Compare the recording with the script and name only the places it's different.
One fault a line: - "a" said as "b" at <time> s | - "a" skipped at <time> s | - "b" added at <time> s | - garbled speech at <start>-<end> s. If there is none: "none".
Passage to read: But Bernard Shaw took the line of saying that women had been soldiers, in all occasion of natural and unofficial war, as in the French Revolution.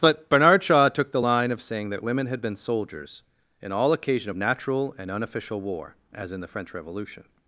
none